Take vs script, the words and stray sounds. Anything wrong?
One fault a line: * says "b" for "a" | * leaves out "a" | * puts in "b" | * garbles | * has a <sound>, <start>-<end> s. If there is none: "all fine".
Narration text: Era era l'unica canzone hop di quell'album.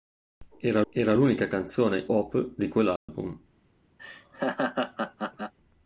* has a dropout, 3.0-3.1 s
* has a laugh, 4.0-5.5 s